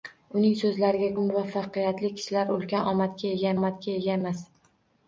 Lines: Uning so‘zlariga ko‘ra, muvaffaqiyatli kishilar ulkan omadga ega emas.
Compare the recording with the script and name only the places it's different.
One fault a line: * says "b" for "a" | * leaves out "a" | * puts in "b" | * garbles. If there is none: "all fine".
* leaves out "ko‘ra"
* puts in "omadga ega"